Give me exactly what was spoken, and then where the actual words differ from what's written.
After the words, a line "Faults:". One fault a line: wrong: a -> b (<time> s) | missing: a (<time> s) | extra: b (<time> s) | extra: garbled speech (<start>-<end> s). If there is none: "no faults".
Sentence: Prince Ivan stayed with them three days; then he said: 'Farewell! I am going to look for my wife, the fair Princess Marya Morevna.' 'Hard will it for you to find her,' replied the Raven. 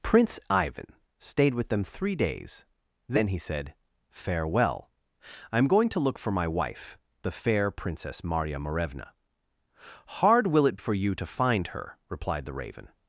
Prince Ivan stayed with them three days; then he said: 'Farewell! I am going to look for my wife, the fair Princess Marya Morevna.' 'Hard will it for you to find her,' replied the Raven.
Faults:
no faults